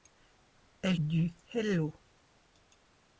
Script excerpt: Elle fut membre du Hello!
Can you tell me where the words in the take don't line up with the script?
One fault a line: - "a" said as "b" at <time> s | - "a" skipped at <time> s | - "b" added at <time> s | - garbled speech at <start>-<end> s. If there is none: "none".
- "fut membre" skipped at 1.0 s